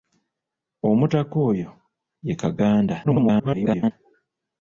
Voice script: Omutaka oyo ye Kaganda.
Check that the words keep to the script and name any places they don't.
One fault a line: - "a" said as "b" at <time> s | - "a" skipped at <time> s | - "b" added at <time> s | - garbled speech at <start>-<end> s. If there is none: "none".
- garbled speech at 3.0-3.9 s